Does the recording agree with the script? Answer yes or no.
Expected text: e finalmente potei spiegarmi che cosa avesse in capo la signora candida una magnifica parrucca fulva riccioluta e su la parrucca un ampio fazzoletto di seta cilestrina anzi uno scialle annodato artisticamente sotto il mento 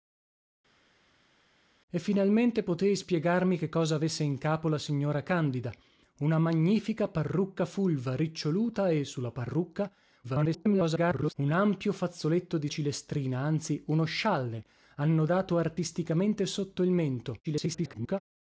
no